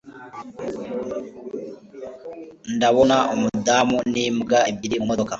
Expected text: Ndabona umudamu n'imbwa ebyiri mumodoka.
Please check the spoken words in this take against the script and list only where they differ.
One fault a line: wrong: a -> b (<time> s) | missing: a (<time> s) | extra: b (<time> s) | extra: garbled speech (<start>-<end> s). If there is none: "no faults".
no faults